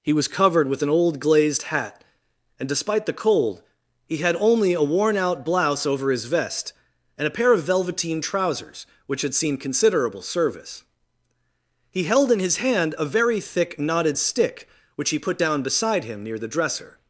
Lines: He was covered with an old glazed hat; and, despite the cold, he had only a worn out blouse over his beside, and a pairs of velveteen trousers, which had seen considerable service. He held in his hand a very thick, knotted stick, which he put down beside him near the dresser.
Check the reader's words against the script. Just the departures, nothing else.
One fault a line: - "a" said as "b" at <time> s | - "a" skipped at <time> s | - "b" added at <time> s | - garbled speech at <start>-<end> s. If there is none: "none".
- "beside" said as "vest" at 6.2 s
- "pairs" said as "pair" at 7.4 s